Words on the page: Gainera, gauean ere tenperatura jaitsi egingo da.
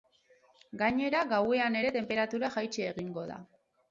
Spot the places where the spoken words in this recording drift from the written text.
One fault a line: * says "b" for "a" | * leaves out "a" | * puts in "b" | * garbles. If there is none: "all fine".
all fine